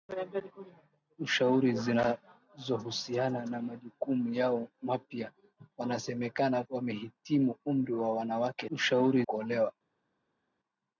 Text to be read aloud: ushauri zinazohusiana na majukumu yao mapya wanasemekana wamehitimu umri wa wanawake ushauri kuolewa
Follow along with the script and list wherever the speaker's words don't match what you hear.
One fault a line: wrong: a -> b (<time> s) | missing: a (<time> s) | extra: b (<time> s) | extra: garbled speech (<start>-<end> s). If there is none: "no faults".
no faults